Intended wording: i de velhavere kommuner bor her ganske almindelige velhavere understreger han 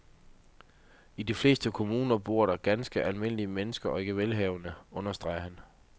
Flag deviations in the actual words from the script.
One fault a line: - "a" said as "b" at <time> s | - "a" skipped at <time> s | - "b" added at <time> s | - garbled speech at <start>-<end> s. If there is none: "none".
- "velhavere" said as "fleste" at 1.3 s
- "her" said as "der" at 2.5 s
- "mennesker og ikke" added at 3.5 s